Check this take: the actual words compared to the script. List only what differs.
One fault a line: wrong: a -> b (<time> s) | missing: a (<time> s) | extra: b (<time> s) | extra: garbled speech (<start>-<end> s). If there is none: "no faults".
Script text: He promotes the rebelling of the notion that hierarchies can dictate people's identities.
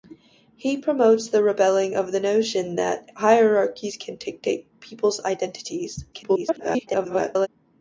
extra: garbled speech (6.1-7.5 s)